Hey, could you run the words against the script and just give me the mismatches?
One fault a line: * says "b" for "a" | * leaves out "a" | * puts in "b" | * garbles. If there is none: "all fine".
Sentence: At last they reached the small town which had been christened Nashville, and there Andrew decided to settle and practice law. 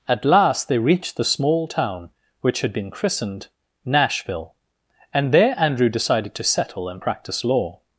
all fine